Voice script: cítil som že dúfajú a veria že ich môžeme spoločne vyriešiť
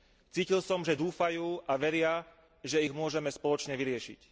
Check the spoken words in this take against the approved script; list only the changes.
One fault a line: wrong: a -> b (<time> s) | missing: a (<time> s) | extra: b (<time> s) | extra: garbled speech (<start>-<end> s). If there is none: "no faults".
no faults